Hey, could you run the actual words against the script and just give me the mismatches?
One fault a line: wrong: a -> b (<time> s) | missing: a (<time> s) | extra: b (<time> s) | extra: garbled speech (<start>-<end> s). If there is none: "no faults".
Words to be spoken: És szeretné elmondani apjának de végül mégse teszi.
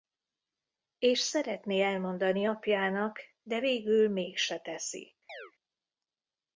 no faults